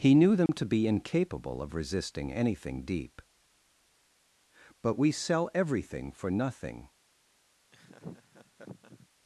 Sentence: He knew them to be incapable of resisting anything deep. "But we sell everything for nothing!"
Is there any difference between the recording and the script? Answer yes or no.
no